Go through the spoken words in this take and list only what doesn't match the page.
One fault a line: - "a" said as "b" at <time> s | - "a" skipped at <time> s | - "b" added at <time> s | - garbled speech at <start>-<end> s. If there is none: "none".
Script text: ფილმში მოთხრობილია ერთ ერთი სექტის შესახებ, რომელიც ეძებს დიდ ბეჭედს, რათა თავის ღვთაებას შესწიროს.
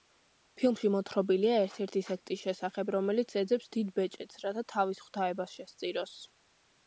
none